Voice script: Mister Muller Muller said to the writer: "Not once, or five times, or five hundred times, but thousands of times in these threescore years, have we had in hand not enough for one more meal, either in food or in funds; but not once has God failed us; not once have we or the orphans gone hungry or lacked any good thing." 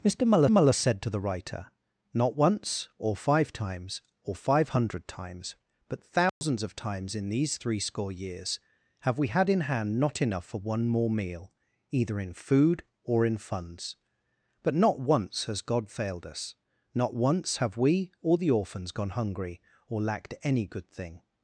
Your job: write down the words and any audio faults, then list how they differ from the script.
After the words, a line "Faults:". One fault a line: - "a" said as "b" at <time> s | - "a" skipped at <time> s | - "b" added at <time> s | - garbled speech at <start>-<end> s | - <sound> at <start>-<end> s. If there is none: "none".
Mister Muller Muller said to the writer: "Not once, or five times, or five hundred times, but thousands of times in these threescore years, have we had in hand not enough for one more meal, either in food or in funds; but not once has God failed us; not once have we or the orphans gone hungry or lacked any good thing."
Faults:
- dropout at 6.3-6.4 s